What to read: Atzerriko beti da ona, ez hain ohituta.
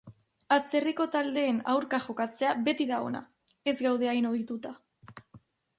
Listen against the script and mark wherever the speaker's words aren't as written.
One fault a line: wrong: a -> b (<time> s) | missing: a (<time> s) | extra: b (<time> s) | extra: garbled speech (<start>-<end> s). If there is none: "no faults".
extra: taldeen aurka jokatzea (1.1 s)
extra: gaude (3.9 s)